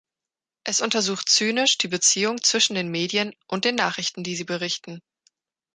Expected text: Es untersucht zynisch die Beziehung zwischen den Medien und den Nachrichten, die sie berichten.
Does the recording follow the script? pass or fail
pass